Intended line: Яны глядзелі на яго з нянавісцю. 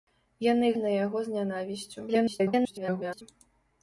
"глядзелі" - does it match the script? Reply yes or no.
no